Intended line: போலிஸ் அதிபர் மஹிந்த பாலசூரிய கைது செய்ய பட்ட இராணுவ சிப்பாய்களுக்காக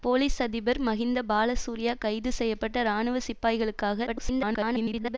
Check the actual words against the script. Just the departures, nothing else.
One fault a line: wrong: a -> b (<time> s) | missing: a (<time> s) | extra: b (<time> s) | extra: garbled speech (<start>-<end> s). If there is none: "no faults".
extra: garbled speech (4.1-5.2 s)